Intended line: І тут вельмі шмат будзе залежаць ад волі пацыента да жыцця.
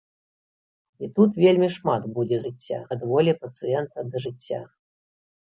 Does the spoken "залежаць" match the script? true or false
false